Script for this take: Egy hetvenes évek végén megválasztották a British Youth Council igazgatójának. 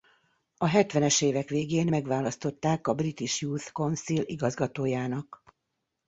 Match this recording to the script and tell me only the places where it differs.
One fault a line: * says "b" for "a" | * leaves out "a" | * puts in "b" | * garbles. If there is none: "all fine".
* says "A" for "Egy"